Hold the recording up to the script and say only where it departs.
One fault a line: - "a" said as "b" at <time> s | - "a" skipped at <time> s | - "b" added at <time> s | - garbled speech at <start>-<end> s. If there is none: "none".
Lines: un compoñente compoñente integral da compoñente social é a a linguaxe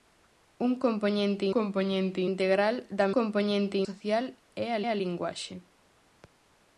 none